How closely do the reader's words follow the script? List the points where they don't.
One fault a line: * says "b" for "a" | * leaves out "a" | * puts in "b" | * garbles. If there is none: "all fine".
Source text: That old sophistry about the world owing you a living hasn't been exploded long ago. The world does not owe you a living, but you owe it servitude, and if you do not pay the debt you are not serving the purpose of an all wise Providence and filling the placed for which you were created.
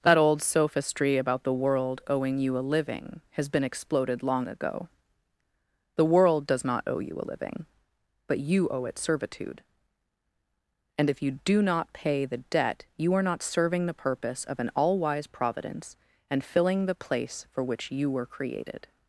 * says "has" for "hasn't"
* says "place" for "placed"